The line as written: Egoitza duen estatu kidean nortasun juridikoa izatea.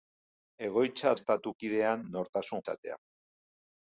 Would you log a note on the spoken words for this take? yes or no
yes